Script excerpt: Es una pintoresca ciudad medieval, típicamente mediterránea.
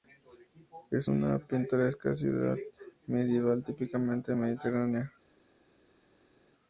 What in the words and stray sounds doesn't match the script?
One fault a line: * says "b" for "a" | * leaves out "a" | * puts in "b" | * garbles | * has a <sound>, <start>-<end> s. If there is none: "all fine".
all fine